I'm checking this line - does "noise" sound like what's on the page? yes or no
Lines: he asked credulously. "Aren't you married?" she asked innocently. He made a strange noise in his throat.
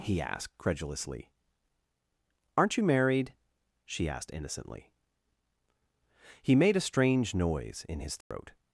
yes